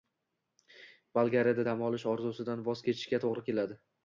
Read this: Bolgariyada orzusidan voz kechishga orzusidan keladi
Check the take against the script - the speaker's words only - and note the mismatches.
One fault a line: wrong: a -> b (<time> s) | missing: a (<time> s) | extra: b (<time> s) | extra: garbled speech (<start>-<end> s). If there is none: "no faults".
extra: dam olish (1.6 s)
wrong: orzusidan -> to‘g‘ri (3.3 s)